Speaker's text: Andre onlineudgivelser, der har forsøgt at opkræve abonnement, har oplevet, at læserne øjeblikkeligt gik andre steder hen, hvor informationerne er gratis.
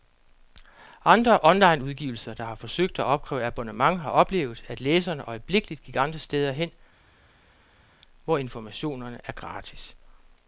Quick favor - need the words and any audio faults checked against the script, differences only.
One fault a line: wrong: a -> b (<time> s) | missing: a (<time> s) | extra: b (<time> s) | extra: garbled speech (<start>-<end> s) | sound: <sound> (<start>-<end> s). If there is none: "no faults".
no faults